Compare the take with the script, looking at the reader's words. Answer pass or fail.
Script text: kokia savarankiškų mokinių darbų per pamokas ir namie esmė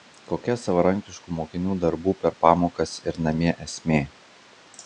pass